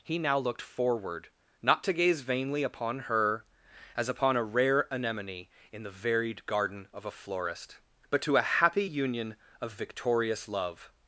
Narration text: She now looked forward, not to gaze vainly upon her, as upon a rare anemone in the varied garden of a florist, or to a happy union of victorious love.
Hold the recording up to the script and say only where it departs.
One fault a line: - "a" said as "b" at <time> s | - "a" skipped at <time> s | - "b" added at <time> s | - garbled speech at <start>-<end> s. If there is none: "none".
- "She" said as "He" at 0.0 s
- "or" said as "but" at 8.1 s